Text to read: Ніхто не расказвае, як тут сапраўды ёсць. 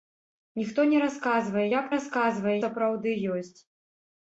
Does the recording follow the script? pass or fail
fail